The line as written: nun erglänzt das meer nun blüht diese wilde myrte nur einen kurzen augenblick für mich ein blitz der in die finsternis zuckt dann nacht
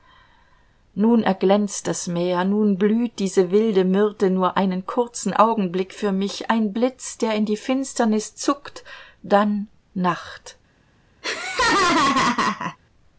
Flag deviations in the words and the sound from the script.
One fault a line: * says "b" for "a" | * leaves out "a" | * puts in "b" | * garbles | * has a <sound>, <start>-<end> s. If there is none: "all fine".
* has a laugh, 11.2-12.8 s